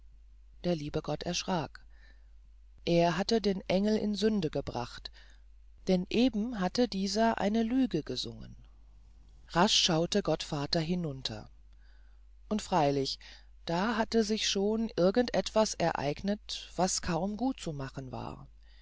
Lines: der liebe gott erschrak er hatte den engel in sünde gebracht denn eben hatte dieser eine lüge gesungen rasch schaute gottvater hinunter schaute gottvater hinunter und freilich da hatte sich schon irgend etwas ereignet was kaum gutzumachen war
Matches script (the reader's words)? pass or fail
fail